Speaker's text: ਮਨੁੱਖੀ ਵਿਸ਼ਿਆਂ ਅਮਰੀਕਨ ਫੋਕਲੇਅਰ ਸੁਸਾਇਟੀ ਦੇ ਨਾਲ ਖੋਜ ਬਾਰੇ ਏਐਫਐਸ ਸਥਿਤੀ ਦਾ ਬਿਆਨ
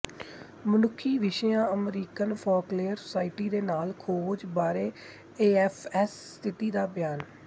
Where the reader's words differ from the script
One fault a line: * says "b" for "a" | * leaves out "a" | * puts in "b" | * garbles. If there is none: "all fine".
all fine